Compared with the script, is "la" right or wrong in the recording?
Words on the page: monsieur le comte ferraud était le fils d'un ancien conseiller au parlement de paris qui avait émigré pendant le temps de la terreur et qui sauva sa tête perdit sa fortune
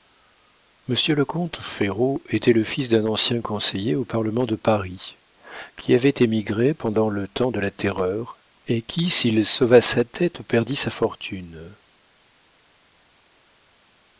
right